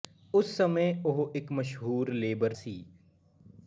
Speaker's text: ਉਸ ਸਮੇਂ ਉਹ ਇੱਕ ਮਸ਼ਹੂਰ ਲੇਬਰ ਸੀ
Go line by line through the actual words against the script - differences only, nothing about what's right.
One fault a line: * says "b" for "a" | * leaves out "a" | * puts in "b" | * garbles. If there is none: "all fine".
all fine